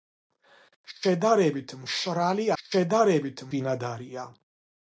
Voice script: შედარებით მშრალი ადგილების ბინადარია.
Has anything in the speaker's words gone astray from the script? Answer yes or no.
yes